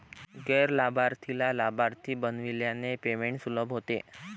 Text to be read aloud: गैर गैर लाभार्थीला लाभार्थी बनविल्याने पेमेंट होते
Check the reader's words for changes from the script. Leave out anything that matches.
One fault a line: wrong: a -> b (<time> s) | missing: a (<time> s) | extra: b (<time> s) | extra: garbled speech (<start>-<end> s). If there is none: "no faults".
missing: गैर (0.7 s)
extra: सुलभ (3.4 s)